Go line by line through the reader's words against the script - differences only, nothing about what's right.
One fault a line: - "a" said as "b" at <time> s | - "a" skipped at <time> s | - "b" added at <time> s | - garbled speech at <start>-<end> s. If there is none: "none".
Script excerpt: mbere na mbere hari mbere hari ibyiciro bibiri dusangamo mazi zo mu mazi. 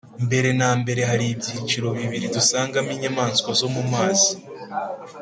- "mbere hari" skipped at 1.2 s
- "mazi" said as "inyamaswa" at 2.9 s